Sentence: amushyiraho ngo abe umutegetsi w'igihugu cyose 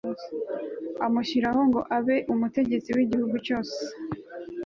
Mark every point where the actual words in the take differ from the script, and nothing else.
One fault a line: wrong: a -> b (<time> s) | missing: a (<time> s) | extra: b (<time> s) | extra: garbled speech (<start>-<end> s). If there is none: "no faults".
no faults